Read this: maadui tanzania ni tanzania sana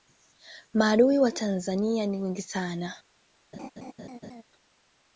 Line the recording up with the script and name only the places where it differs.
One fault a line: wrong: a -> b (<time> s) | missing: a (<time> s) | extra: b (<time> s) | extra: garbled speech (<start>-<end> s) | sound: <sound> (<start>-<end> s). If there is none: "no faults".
extra: wa (1.2 s)
wrong: tanzania -> wengi (2.2 s)
sound: laugh (3.5-4.4 s)